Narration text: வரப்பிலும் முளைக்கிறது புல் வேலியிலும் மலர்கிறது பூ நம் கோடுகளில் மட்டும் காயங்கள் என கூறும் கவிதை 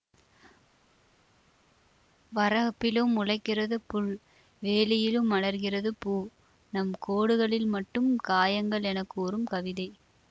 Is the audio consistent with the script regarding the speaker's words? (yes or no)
yes